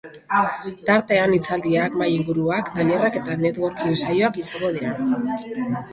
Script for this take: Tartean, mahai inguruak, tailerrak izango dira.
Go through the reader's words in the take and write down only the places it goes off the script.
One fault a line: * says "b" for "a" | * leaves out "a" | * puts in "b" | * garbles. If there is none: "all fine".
* puts in "hitzaldiak"
* puts in "eta networking saioak"